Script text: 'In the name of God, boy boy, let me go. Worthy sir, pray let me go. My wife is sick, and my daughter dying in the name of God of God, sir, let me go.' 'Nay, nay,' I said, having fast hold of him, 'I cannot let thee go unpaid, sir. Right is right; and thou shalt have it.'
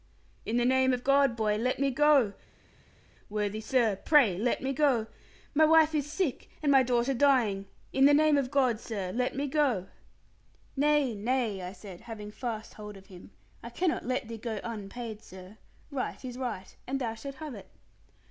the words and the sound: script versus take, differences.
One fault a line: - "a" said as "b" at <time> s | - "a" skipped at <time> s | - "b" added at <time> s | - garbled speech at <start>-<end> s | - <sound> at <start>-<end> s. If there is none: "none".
- "boy" skipped at 1.6 s
- "of God" skipped at 8.8 s